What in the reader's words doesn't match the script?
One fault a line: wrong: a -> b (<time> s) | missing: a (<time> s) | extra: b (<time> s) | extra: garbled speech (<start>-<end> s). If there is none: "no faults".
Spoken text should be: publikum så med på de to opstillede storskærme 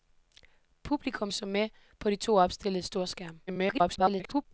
extra: garbled speech (3.5-4.5 s)